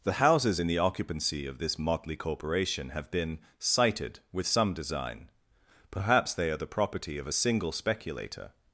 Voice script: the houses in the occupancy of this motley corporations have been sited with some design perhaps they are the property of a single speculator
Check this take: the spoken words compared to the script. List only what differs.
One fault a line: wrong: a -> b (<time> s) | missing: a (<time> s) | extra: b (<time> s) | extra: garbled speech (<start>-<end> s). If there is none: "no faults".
wrong: corporations -> corporation (2.1 s)